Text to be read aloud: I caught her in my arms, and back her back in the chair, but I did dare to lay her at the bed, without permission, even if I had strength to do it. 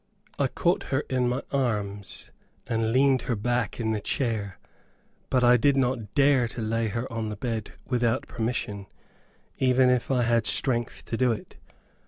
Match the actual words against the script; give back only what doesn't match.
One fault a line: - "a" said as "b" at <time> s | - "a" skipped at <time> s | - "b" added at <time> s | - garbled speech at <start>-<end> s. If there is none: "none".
- "back" said as "leaned" at 2.9 s
- "not" added at 5.8 s
- "at" said as "on" at 7.1 s